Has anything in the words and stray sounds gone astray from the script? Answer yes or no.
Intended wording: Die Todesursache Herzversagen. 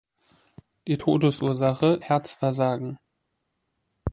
no